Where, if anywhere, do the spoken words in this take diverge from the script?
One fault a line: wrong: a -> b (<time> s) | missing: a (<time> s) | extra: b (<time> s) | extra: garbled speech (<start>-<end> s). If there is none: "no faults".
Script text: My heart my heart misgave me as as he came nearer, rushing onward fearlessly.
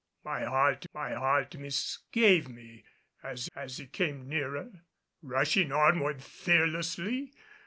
no faults